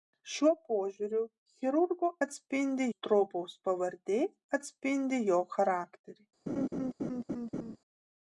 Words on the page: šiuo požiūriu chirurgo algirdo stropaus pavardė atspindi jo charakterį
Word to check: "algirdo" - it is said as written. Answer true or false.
false